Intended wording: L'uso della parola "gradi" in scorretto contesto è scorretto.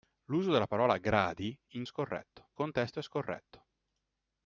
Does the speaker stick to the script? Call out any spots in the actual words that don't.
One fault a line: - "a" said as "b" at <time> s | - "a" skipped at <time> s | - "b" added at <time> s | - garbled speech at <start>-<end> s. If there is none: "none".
none